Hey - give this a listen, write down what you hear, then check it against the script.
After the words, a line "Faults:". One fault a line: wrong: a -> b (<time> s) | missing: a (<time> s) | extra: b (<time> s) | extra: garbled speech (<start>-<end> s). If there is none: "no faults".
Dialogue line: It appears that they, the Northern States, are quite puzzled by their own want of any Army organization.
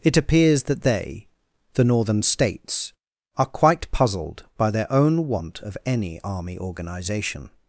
It appears that they, the Northern States, are quite puzzled by their own want of any Army organization.
Faults:
no faults